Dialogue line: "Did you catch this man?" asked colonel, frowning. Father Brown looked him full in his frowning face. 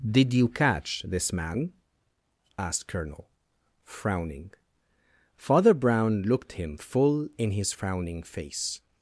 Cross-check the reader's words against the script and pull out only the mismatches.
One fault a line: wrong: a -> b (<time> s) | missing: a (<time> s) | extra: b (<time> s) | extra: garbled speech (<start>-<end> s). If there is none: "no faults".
no faults